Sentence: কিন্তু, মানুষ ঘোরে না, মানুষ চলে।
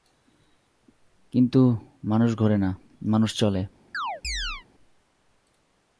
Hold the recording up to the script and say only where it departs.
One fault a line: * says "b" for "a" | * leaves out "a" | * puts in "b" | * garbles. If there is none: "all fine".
all fine